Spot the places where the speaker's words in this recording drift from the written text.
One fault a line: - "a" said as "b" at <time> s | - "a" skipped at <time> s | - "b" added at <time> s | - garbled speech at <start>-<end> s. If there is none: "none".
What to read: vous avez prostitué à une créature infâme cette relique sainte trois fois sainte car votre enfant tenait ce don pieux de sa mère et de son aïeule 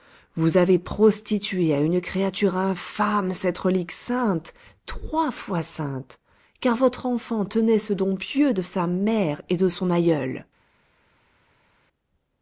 none